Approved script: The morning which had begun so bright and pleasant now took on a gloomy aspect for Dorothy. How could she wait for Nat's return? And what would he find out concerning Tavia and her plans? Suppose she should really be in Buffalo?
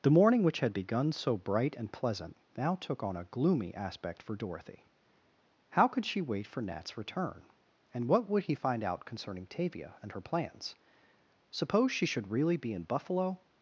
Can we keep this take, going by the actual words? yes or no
yes